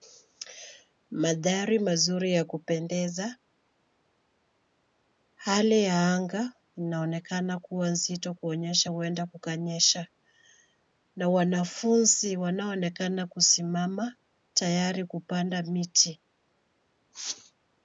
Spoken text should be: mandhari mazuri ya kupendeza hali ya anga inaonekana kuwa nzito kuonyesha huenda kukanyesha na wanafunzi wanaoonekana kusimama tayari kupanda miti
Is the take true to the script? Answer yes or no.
yes